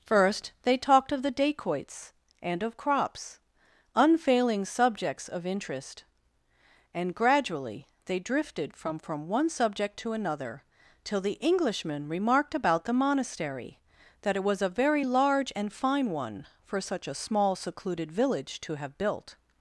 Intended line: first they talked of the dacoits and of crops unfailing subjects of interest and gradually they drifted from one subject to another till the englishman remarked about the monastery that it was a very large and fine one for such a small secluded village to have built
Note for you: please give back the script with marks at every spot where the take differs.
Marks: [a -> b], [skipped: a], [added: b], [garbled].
first they talked of the dacoits and of crops unfailing subjects of interest and gradually they drifted from [added: from] one subject to another till the englishman remarked about the monastery that it was a very large and fine one for such a small secluded village to have built